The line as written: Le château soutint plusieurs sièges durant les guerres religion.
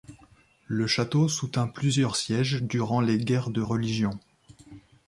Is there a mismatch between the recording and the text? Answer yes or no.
yes